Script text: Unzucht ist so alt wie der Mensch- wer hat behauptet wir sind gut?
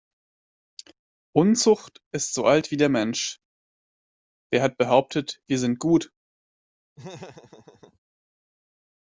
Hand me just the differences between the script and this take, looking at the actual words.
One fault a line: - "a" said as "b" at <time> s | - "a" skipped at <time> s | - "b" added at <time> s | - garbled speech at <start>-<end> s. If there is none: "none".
none